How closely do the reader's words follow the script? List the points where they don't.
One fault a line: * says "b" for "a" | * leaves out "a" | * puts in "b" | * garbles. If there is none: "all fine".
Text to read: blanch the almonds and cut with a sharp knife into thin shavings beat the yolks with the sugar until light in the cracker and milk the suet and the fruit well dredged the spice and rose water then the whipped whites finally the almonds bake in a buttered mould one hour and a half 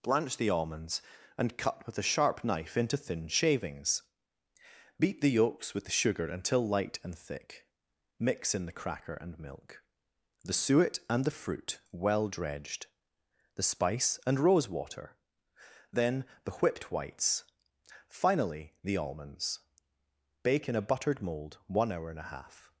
* puts in "and thick mix"